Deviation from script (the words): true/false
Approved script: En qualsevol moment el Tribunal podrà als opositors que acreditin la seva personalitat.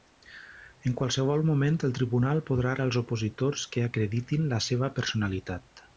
false